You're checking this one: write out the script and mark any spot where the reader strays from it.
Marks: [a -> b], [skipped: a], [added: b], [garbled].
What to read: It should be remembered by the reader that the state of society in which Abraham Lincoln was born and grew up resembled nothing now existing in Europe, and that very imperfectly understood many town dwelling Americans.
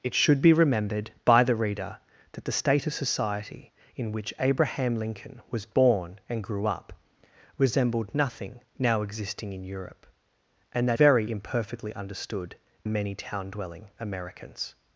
It should be remembered by the reader that the state of society in which Abraham Lincoln was born and grew up resembled nothing now existing in Europe, and that very imperfectly understood many town dwelling Americans.